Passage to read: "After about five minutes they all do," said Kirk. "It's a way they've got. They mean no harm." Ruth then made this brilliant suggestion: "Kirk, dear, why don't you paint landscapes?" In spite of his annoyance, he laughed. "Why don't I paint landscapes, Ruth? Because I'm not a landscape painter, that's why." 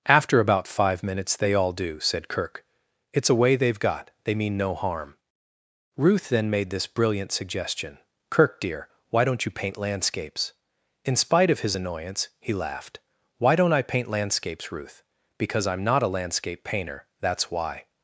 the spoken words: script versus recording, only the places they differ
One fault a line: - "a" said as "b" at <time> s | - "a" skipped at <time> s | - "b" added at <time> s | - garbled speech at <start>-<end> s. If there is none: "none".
none